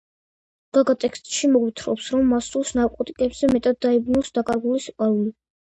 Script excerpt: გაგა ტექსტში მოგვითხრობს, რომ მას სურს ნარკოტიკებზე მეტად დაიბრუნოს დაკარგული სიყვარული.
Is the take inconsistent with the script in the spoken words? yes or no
no